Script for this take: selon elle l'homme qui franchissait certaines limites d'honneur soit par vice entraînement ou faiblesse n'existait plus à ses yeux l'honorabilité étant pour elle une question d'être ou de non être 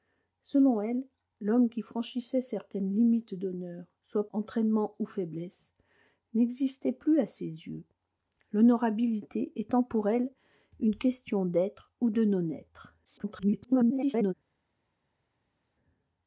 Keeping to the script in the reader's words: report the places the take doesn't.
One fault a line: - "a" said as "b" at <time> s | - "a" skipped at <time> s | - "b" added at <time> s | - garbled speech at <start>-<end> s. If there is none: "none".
- "par vice" skipped at 4.3 s
- garbled speech at 13.0-14.3 s